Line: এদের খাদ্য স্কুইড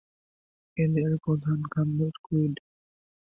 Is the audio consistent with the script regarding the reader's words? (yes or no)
no